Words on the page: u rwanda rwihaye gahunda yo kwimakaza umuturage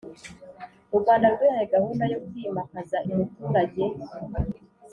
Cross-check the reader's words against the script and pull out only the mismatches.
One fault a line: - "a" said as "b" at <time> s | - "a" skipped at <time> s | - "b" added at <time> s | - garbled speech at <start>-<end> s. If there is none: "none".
none